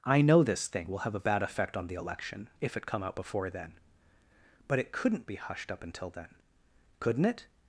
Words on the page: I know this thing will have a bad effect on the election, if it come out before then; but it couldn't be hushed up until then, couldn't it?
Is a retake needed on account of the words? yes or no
no